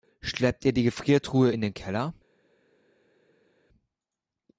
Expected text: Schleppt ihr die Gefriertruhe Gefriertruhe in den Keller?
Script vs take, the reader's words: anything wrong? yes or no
yes